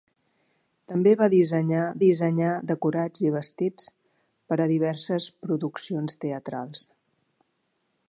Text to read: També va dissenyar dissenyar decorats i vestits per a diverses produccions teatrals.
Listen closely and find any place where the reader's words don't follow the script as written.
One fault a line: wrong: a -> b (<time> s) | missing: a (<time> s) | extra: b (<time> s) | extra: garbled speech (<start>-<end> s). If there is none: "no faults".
no faults